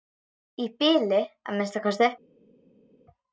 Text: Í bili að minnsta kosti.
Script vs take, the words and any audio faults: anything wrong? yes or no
no